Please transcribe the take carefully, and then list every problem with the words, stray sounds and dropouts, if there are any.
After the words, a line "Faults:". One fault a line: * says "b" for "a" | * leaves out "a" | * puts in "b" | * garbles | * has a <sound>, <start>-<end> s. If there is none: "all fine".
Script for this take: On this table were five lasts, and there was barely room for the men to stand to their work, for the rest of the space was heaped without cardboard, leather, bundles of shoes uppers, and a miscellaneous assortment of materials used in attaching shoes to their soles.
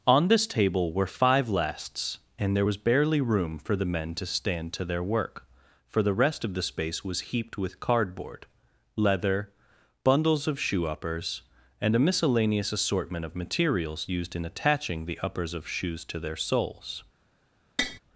On this table were five lasts, and there was barely room for the men to stand to their work, for the rest of the space was heaped with cardboard, leather, bundles of shoe uppers, and a miscellaneous assortment of materials used in attaching the uppers of shoes to their soles.
Faults:
* says "with" for "without"
* says "shoe" for "shoes"
* puts in "the uppers of"
* has a tap, 17.8-18.0 s